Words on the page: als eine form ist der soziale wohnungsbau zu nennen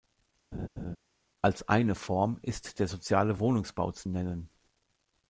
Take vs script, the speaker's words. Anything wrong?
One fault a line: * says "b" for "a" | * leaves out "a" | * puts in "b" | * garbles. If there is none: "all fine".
all fine